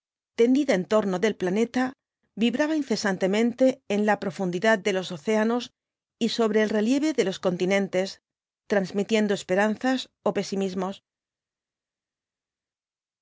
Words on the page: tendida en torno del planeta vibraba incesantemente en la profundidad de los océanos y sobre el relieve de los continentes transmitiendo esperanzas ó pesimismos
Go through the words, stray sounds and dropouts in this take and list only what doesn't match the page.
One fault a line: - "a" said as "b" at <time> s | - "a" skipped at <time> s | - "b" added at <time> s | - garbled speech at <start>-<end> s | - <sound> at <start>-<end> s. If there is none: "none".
none